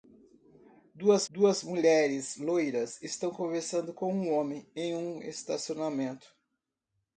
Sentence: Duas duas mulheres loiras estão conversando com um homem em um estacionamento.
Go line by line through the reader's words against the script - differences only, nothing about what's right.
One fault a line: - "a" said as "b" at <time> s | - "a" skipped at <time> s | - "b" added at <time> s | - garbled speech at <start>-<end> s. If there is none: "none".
none